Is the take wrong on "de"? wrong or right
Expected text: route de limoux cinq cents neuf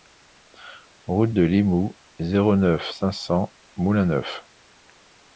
right